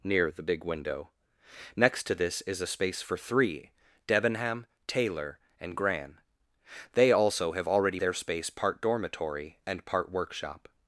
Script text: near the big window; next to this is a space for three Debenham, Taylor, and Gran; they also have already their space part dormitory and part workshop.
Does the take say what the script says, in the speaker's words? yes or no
yes